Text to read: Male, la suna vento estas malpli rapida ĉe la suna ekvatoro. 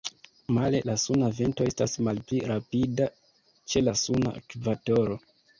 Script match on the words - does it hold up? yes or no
yes